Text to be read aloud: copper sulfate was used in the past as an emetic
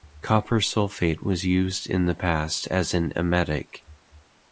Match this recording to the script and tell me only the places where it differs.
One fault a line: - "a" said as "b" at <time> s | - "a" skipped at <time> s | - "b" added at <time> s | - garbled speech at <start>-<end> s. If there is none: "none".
none